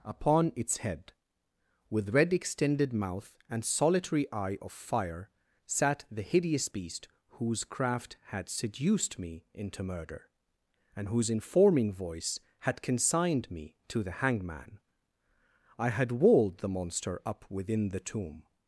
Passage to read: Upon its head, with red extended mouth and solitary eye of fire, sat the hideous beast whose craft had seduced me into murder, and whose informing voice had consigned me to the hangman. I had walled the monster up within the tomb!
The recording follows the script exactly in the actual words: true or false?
true